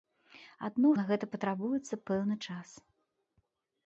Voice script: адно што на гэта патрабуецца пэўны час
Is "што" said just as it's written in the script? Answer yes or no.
no